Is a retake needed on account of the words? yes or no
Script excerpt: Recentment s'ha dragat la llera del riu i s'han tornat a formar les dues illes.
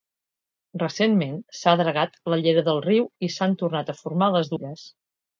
yes